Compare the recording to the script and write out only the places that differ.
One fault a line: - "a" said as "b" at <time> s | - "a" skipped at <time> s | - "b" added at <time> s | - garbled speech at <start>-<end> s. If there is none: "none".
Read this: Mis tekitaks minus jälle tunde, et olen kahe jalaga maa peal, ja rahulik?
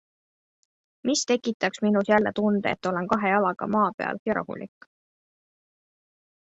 none